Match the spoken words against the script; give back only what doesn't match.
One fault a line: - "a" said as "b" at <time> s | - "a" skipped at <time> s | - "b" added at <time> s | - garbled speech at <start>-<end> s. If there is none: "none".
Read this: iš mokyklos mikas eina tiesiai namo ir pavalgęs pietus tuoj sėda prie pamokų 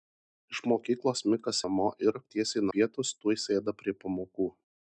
- "eina tiesiai" skipped at 1.6 s
- "pavalgęs" said as "tiesiai" at 2.3 s